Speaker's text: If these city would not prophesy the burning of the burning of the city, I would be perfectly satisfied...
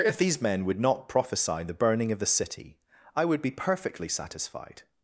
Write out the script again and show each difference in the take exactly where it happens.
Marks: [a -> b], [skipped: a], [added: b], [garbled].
If these [city -> men] would not prophesy the burning of the [skipped: burning of the] city, I would be perfectly satisfied...